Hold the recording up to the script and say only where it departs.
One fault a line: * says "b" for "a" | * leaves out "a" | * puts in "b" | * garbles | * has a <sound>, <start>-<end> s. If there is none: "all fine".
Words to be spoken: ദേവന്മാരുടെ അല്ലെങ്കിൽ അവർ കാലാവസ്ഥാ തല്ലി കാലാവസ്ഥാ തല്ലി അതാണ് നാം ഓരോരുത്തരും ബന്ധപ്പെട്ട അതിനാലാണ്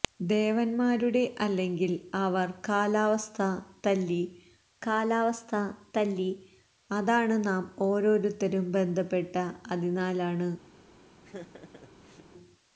* has a laugh, 11.2-12.3 s